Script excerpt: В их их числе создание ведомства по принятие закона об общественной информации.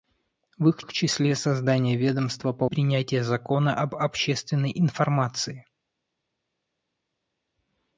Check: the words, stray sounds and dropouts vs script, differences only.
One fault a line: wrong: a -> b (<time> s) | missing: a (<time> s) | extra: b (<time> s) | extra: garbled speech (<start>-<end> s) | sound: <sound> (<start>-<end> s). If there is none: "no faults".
no faults